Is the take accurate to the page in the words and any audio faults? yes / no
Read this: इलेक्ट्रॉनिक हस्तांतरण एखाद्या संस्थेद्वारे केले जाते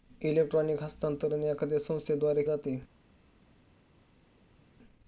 no